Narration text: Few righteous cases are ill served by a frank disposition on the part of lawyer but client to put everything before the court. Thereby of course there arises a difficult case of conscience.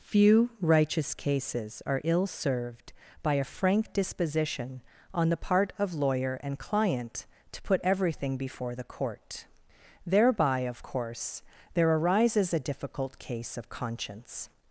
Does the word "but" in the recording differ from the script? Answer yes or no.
yes